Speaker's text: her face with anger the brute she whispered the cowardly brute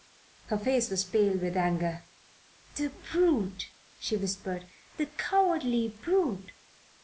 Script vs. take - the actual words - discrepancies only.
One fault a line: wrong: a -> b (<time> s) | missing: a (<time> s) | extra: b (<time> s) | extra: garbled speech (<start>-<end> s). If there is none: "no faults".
extra: was pale (0.9 s)